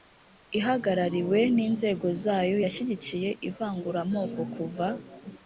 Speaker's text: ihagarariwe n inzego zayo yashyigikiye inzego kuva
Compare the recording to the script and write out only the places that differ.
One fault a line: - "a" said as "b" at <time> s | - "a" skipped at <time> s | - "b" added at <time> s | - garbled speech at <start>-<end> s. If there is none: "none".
- "inzego" said as "ivanguramoko" at 3.5 s